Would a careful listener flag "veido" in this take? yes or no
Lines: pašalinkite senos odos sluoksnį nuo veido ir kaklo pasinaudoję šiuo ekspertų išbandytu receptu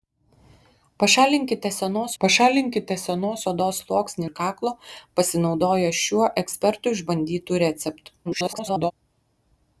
yes